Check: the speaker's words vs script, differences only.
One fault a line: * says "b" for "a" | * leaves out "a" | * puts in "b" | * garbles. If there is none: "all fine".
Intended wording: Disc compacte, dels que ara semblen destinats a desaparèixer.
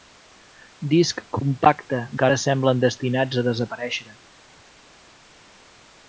* leaves out "dels"